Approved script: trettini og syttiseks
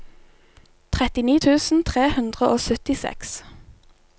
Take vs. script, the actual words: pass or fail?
fail